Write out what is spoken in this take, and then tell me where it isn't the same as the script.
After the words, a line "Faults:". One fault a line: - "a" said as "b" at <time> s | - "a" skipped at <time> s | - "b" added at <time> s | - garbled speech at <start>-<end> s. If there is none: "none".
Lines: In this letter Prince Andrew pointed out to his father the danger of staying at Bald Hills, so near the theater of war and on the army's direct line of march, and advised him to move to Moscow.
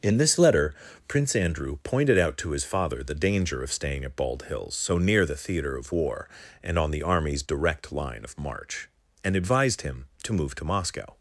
In this letter Prince Andrew pointed out to his father the danger of staying at Bald Hills, so near the theater of war and on the army's direct line of march, and advised him to move to Moscow.
Faults:
none